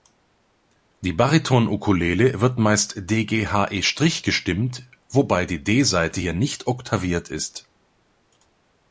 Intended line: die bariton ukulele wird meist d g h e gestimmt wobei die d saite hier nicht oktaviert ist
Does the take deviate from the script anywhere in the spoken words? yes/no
no